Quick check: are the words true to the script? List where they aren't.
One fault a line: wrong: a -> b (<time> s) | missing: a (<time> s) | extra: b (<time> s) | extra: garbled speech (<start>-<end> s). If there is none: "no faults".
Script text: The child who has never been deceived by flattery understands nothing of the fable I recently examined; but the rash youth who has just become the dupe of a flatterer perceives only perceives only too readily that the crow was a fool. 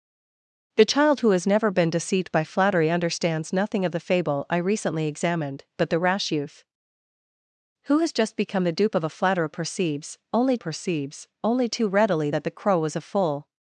no faults